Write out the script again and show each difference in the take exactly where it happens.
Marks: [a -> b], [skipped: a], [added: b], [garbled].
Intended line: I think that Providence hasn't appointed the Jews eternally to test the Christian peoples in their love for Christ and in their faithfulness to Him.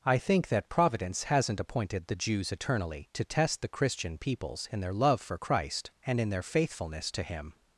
I think that Providence hasn't appointed the Jews eternally to test the Christian peoples in their love for Christ and in their faithfulness to Him.